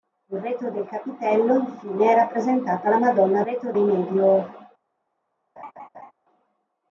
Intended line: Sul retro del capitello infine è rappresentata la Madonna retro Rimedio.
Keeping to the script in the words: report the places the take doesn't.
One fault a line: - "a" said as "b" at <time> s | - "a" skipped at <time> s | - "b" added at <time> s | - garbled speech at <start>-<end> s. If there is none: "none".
none